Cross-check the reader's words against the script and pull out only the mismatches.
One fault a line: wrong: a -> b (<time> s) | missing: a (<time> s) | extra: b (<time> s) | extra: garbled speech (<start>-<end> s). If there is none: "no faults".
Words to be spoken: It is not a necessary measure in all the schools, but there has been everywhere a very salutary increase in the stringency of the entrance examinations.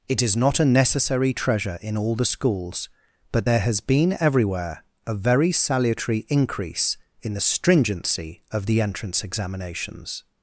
wrong: measure -> treasure (1.3 s)